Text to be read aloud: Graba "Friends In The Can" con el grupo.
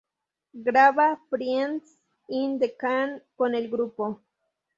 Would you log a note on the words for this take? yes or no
no